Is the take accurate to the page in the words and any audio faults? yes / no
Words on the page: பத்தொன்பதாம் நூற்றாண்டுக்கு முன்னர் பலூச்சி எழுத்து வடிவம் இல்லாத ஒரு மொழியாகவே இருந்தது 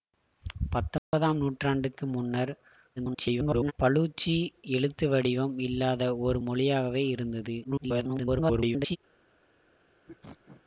no